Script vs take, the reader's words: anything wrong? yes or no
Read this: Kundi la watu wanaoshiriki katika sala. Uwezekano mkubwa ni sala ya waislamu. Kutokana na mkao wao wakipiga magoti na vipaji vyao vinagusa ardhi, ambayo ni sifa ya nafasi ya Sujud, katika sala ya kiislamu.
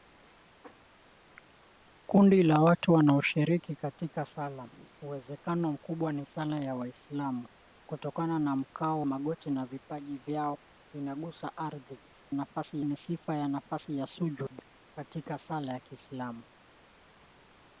yes